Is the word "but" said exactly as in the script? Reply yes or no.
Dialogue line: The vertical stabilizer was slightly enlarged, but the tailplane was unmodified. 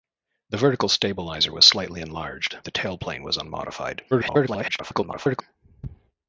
no